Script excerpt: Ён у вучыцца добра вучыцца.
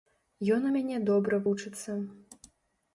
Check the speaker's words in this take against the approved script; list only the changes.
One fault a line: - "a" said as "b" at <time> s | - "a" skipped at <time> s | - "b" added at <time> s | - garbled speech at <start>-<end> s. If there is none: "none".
- "вучыцца" said as "мяне" at 0.8 s